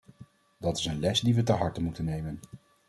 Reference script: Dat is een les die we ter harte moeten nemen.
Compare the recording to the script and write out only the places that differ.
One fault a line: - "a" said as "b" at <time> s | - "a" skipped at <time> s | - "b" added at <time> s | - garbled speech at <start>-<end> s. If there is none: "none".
none